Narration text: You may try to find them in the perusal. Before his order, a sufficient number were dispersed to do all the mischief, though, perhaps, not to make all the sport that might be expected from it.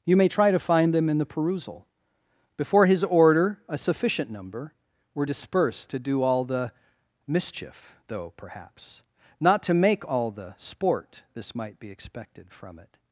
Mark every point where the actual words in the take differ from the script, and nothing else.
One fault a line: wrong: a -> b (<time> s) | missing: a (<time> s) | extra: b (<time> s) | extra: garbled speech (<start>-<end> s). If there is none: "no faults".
wrong: that -> this (11.3 s)